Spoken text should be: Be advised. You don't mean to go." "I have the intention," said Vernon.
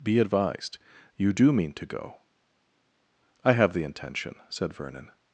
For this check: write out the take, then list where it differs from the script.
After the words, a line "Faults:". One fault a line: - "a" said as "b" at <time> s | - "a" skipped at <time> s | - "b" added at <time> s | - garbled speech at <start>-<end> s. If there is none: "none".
Be advised. You do mean to go." "I have the intention," said Vernon.
Faults:
- "don't" said as "do" at 1.3 s